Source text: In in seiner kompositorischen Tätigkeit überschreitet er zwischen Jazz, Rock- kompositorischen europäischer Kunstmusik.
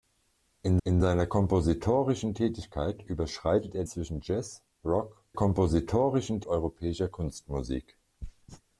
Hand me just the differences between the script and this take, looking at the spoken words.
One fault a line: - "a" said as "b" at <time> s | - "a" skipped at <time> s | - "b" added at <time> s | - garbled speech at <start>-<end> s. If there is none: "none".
none